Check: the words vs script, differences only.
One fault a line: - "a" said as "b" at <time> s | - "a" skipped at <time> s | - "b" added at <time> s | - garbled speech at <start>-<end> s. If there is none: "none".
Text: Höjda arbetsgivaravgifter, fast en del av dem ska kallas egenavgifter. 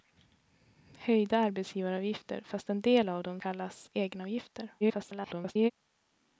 - "ska" skipped at 3.4 s
- garbled speech at 4.8-5.7 s